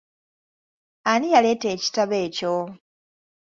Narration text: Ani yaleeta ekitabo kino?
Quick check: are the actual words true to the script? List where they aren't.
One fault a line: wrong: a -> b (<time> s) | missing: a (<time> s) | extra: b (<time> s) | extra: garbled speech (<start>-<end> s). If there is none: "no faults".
wrong: kino -> ekyo (2.2 s)